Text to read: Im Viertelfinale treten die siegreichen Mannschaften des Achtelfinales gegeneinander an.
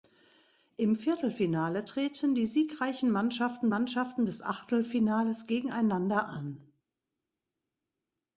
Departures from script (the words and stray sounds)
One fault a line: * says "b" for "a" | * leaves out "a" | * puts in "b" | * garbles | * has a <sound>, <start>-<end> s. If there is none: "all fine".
* puts in "Mannschaften"